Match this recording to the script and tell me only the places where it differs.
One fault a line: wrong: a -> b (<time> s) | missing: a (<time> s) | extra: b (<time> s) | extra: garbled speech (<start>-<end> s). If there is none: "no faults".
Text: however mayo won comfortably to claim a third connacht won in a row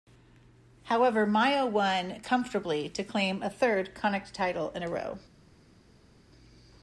wrong: won -> title (4.3 s)